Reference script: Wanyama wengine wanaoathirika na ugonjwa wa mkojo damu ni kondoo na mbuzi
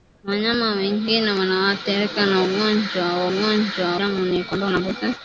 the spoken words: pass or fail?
fail